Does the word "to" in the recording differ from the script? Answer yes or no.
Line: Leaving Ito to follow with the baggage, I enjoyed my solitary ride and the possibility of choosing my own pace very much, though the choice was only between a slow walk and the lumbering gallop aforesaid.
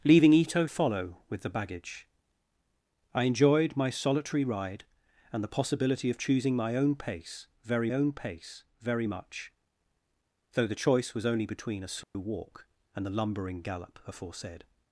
yes